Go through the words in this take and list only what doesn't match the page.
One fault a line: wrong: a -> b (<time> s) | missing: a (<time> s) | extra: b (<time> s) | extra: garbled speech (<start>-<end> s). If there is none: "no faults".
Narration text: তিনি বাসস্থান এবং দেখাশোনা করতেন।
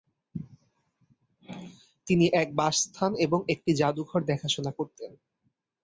extra: এক (2.3 s)
extra: একটি জাদুঘর (3.5 s)